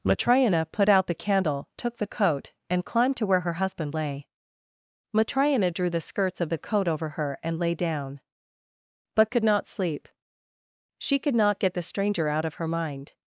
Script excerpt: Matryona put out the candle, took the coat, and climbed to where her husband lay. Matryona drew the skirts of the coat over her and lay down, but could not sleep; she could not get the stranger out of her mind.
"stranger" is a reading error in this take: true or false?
false